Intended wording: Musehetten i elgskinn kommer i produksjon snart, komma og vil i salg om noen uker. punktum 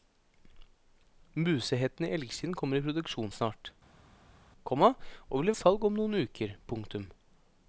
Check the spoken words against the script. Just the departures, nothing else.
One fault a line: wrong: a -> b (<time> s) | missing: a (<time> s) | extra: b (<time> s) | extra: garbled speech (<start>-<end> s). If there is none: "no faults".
no faults